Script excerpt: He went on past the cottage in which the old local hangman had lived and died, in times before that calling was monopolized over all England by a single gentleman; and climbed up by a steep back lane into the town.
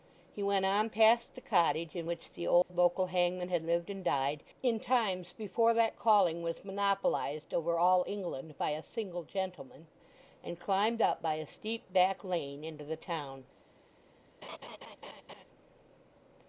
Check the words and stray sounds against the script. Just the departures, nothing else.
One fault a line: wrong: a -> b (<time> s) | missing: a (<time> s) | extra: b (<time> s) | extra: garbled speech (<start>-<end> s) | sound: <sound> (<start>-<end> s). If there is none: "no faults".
sound: dropout (2.6-2.7 s)
sound: laugh (14.4-15.4 s)